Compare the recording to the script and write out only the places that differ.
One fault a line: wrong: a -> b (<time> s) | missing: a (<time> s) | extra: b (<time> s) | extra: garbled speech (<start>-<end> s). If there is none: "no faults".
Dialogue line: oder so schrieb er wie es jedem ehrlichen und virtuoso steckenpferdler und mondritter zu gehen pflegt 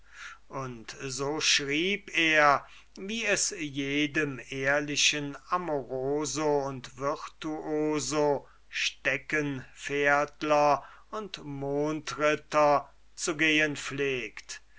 wrong: oder -> und (0.5 s)
extra: amoroso (5.5 s)